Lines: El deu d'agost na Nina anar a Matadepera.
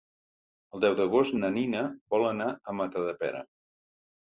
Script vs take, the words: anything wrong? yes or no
yes